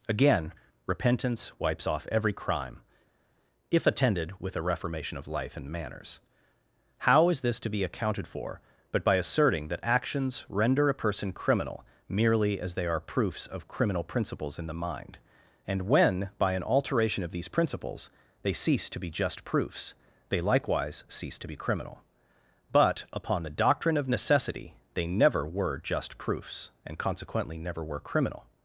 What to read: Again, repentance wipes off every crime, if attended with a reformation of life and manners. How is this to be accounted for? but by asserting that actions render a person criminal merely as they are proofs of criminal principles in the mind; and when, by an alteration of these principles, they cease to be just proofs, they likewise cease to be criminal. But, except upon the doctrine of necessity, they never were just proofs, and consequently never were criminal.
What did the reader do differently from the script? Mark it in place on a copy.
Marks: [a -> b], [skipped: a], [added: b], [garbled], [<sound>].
Again, repentance wipes off every crime, if attended with a reformation of life and manners. How is this to be accounted for? but by asserting that actions render a person criminal merely as they are proofs of criminal principles in the mind; and when, by an alteration of these principles, they cease to be just proofs, they likewise cease to be criminal. But, [skipped: except] upon the doctrine of necessity, they never were just proofs, and consequently never were criminal.